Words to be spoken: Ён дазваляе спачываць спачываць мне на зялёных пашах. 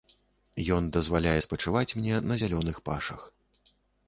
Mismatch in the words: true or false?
true